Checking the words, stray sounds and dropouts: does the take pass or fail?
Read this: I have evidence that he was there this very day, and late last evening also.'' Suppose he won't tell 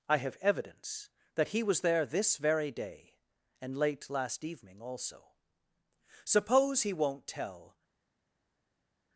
pass